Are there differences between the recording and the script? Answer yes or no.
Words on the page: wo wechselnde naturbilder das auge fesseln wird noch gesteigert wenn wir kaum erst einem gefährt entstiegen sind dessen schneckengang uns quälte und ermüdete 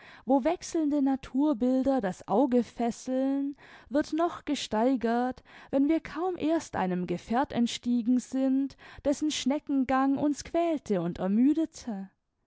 no